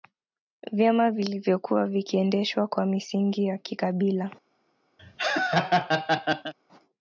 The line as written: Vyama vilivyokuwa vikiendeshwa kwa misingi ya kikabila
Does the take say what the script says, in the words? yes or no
yes